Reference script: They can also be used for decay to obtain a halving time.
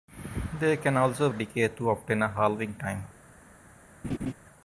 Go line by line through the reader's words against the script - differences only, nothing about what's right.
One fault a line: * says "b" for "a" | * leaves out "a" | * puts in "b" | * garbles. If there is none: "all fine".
* leaves out "be used for"